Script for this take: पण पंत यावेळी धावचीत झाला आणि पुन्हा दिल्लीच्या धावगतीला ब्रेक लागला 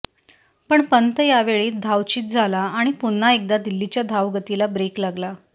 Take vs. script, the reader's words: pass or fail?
fail